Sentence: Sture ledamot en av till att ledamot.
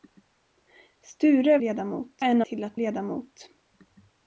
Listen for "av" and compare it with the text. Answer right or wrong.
right